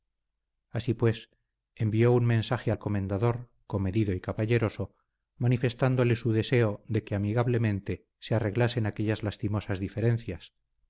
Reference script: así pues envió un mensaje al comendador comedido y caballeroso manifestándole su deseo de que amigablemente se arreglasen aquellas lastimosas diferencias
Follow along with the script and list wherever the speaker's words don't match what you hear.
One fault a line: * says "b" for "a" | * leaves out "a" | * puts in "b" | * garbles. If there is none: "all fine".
all fine